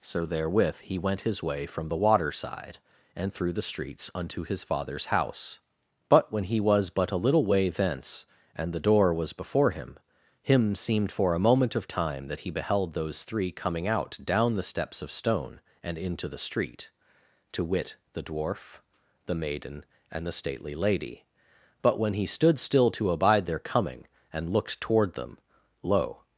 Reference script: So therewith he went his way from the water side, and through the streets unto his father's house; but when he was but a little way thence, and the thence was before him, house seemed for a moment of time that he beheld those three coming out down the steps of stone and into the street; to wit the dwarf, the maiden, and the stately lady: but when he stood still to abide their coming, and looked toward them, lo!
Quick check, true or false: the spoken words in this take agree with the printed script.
false